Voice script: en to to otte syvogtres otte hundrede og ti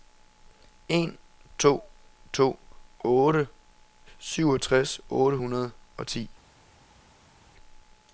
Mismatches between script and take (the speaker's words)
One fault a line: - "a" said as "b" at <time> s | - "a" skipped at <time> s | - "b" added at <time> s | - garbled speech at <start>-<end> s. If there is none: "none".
none